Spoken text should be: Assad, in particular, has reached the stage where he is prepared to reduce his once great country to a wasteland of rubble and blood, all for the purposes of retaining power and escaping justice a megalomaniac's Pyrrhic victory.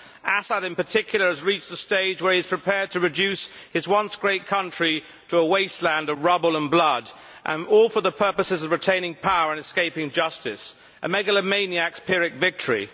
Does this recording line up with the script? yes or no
yes